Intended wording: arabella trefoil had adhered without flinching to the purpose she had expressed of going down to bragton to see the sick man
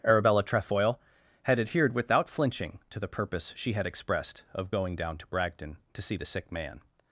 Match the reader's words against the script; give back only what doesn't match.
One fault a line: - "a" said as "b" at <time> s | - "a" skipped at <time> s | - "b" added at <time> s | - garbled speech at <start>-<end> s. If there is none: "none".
none